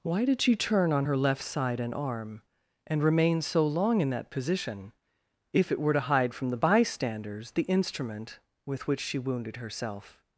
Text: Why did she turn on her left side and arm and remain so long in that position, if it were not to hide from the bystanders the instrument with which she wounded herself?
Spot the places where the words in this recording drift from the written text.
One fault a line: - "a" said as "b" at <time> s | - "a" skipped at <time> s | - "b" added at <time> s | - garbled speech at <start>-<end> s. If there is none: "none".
- "not" skipped at 5.9 s